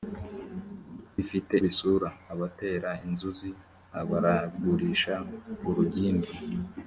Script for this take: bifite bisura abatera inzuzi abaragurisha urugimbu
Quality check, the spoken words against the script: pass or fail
pass